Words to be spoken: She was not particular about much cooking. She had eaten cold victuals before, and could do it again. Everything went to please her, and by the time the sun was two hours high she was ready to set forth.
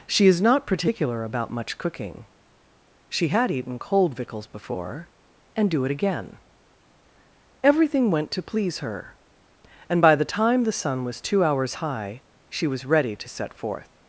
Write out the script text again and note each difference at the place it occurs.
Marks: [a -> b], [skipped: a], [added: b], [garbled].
She [was -> is] not particular about much cooking. She had eaten cold victuals before, and [skipped: could] do it again. Everything went to please her, and by the time the sun was two hours high she was ready to set forth.